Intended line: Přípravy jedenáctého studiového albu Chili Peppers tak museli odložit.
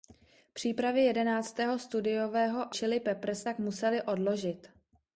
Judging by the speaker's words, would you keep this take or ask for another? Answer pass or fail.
fail